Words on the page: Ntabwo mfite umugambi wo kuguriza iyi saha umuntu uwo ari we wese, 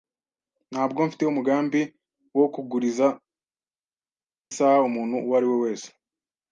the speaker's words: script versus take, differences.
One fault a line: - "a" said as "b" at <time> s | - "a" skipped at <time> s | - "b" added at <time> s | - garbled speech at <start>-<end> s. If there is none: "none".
- "iyi" skipped at 3.1 s